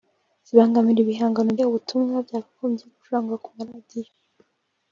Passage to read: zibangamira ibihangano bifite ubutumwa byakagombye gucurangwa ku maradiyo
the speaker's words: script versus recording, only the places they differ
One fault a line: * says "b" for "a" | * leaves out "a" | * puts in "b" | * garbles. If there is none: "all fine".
* leaves out "bifite"